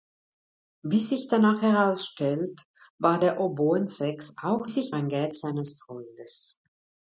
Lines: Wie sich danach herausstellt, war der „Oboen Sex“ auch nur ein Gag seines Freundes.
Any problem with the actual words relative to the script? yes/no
yes